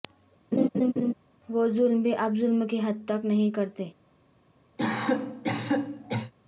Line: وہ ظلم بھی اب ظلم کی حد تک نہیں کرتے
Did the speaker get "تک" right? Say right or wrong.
right